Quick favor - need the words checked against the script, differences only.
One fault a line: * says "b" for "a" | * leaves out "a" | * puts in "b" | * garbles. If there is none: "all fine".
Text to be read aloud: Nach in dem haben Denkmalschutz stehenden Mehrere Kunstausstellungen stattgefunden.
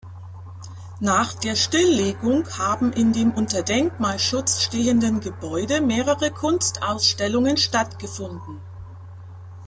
* puts in "der Stilllegung haben"
* says "unter" for "haben"
* puts in "Gebäude"